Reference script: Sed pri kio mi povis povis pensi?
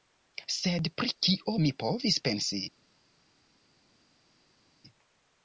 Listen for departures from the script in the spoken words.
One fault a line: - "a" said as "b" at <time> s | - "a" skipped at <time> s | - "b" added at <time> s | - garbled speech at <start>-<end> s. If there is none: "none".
- "povis" skipped at 2.2 s